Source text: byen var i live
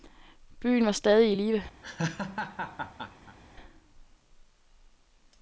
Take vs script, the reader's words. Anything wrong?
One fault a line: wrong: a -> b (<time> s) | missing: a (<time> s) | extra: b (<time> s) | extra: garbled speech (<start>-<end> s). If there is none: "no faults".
extra: stadig (0.9 s)